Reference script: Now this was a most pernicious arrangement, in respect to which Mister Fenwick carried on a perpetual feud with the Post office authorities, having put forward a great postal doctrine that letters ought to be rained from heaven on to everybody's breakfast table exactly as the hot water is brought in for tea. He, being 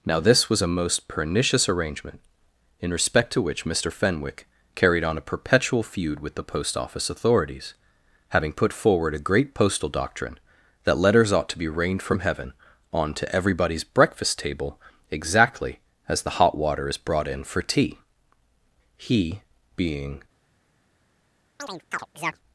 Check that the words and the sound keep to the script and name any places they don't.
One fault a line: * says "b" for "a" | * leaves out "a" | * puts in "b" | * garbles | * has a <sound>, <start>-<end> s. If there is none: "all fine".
* has a chirp, 21.6-22.4 s